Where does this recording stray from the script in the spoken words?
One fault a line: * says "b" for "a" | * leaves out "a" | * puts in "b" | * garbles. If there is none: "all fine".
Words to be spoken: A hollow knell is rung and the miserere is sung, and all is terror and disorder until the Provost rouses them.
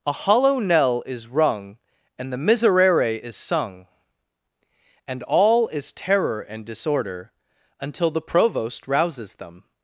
all fine